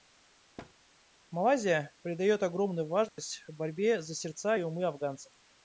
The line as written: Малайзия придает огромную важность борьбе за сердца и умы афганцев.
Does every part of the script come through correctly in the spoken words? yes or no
yes